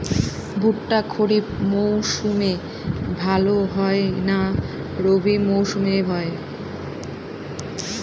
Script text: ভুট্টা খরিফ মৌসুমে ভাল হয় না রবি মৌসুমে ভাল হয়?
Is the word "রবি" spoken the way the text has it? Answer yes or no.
yes